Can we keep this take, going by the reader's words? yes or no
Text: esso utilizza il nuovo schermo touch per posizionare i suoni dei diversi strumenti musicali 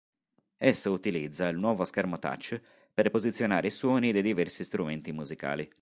yes